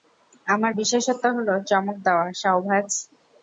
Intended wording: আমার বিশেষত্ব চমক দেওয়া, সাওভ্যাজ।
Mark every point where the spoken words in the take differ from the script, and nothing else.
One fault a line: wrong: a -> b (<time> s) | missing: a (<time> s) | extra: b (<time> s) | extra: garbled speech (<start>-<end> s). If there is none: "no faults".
extra: হলো (1.4 s)